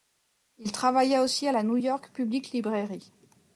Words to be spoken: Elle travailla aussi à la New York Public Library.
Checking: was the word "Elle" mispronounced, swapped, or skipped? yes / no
yes